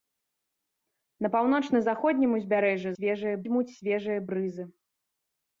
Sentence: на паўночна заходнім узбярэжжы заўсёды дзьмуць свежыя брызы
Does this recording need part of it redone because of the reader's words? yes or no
yes